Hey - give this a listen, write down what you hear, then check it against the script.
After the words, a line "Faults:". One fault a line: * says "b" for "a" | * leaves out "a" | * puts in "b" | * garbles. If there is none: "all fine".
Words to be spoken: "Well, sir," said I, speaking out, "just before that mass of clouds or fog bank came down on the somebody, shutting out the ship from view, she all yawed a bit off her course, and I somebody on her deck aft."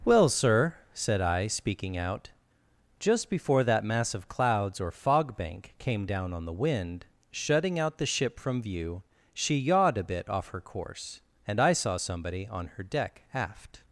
"Well, sir," said I, speaking out, "just before that mass of clouds or fog bank came down on the wind, shutting out the ship from view, she yawed a bit off her course, and I saw somebody on her deck aft."
Faults:
* says "wind" for "somebody"
* leaves out "all"
* puts in "saw"